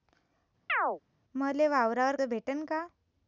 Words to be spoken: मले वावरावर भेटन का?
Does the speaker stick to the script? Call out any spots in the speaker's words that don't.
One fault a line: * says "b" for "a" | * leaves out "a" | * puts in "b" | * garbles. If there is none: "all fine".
all fine